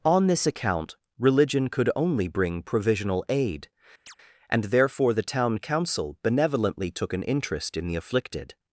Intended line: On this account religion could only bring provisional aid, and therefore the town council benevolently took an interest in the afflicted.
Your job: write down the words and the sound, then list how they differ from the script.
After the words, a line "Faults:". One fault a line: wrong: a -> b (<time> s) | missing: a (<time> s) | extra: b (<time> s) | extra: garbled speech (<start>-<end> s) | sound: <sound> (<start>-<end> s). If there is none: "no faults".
On this account religion could only bring provisional aid, and therefore the town council benevolently took an interest in the afflicted.
Faults:
sound: chirp (4.1-4.2 s)